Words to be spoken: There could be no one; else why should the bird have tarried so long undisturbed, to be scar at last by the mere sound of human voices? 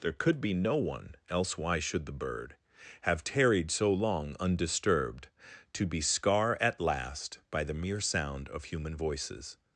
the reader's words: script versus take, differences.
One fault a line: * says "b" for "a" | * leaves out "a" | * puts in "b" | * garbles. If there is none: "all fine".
all fine